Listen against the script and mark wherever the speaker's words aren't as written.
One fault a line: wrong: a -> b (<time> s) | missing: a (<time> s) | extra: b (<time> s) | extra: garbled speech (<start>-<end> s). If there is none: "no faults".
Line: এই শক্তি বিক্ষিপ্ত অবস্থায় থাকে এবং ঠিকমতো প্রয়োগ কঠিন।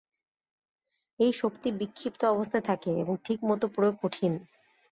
no faults